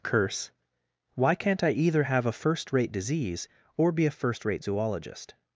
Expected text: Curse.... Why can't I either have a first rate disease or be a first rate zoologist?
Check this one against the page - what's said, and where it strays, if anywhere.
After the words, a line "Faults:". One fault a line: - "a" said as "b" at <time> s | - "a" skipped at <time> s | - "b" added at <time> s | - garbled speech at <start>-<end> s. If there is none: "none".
Curse.... Why can't I either have a first rate disease or be a first rate zoologist?
Faults:
none